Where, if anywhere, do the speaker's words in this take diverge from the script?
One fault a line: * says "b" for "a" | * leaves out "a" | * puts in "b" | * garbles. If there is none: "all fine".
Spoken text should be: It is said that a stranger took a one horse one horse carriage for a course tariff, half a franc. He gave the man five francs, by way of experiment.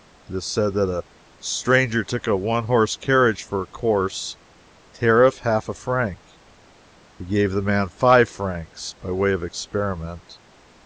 * leaves out "one horse"